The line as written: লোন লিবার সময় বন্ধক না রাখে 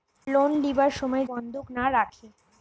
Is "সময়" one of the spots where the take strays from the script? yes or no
no